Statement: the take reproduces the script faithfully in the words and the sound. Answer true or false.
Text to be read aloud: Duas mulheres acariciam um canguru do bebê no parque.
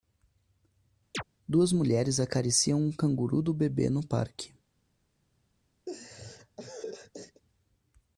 false